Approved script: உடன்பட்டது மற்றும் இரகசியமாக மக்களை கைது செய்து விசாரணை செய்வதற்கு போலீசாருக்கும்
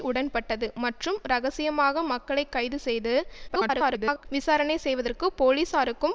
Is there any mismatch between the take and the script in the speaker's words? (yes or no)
yes